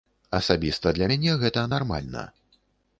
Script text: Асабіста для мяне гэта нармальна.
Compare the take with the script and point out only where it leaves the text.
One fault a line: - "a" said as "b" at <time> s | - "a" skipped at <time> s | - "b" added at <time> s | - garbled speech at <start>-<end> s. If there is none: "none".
none